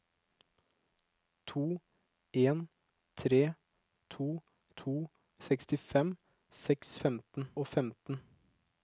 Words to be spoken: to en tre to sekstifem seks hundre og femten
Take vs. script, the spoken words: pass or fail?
fail